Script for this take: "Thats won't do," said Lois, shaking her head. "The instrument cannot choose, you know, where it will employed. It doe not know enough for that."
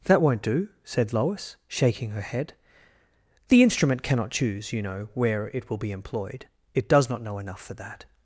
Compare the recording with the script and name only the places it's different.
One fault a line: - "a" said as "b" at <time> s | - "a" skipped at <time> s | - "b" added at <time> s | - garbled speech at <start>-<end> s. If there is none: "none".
- "Thats" said as "That" at 0.1 s
- "be" added at 5.8 s
- "doe" said as "does" at 6.9 s